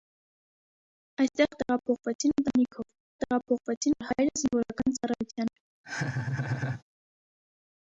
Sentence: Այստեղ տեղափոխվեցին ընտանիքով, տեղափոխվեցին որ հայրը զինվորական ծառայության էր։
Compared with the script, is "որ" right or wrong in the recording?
right